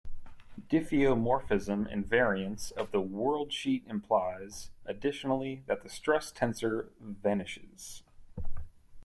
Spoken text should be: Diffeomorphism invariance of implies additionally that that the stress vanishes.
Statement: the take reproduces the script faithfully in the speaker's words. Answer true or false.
false